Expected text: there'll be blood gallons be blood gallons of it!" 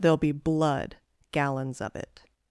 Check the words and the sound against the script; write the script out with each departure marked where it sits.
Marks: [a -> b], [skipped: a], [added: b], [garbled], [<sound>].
there'll be blood gallons [skipped: be blood gallons] of it!"